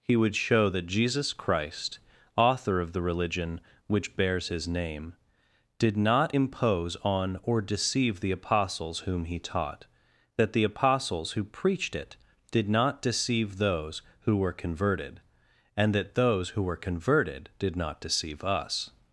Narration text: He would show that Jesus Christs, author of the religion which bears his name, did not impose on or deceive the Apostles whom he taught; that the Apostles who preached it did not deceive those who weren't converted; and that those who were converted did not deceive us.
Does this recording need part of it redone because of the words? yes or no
yes